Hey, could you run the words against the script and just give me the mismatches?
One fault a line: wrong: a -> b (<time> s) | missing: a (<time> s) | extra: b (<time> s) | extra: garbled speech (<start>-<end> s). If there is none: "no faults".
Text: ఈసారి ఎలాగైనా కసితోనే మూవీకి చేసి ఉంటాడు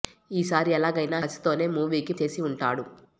no faults